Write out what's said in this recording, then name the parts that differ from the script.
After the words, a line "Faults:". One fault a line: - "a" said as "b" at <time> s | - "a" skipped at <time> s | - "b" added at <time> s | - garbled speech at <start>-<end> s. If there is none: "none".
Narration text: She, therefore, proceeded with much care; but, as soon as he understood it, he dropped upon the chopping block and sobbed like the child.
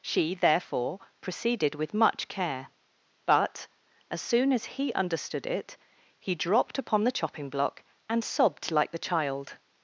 She, therefore, proceeded with much care; but, as soon as he understood it, he dropped upon the chopping block and sobbed like the child.
Faults:
none